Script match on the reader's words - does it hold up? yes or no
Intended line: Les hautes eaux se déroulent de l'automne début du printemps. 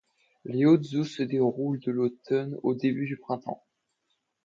no